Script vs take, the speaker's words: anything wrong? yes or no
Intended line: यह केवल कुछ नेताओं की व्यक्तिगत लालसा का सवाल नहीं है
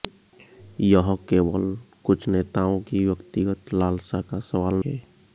yes